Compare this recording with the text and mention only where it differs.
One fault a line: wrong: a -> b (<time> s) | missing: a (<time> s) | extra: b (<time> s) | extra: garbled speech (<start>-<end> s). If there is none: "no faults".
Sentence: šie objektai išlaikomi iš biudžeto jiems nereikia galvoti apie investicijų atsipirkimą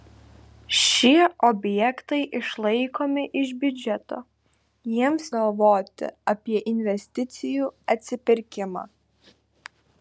missing: nereikia (5.3 s)